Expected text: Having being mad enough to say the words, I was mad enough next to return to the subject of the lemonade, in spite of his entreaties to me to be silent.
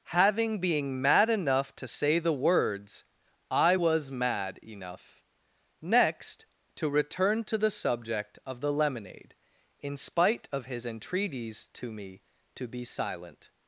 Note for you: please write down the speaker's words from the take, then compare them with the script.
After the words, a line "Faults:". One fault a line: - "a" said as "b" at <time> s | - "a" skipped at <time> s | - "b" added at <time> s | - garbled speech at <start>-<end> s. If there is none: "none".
Having being mad enough to say the words, I was mad enough next to return to the subject of the lemonade, in spite of his entreaties to me to be silent.
Faults:
none